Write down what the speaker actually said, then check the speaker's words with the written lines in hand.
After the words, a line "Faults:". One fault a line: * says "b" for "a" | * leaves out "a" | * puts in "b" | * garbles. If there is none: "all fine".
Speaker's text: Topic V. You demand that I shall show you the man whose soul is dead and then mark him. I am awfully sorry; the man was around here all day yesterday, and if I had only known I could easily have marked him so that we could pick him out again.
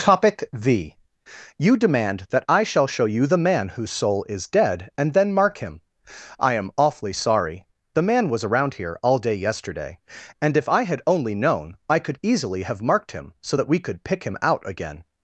Topic V. You demand that I shall show you the man whose soul is dead and then mark him. I am awfully sorry; the man was around here all day yesterday, and if I had only known I could easily have marked him so that we could pick him out again.
Faults:
all fine